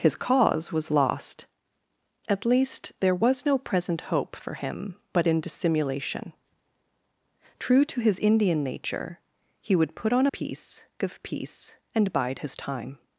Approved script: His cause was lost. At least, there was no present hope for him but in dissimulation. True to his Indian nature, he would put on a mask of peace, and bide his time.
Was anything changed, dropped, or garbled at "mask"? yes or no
yes